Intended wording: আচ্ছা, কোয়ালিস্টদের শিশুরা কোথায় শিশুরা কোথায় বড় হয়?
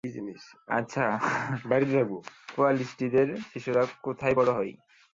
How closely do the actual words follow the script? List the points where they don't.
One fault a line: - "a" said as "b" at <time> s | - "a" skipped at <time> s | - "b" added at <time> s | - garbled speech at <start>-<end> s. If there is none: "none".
- "শিশুরা কোথায়" skipped at 4.3 s